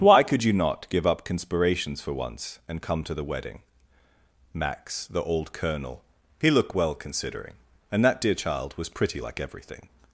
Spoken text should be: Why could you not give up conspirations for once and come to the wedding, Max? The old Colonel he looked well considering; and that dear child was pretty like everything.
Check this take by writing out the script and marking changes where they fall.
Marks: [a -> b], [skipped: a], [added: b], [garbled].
Why could you not give up conspirations for once and come to the wedding, Max? The old Colonel he looked well considering; and that dear child was pretty like everything.